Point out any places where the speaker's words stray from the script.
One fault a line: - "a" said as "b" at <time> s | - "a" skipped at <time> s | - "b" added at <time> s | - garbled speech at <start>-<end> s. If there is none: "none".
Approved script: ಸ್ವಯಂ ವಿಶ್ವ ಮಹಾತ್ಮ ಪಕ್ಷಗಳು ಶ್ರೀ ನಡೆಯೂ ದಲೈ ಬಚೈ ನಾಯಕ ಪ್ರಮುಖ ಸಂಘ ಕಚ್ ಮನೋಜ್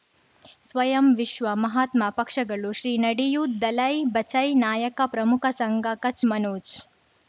none